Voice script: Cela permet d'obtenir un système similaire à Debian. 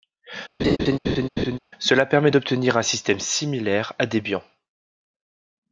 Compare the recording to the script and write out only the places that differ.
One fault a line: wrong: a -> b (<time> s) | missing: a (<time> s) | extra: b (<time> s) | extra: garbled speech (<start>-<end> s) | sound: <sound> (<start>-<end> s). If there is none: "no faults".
sound: laugh (0.6-1.6 s)